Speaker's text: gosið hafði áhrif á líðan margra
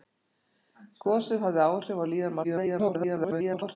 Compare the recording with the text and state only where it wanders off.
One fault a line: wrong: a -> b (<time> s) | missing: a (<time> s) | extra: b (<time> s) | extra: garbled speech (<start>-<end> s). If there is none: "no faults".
extra: garbled speech (2.4-3.8 s)